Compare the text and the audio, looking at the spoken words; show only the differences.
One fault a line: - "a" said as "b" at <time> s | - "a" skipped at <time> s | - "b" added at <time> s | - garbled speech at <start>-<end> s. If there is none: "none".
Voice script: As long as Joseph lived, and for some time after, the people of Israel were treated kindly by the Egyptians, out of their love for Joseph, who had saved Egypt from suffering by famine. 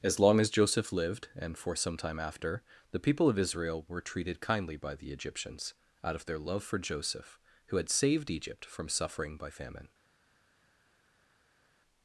none